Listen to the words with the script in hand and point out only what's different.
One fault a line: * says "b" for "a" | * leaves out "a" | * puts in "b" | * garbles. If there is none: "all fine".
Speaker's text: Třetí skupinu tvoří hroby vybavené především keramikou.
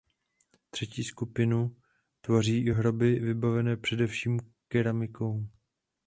all fine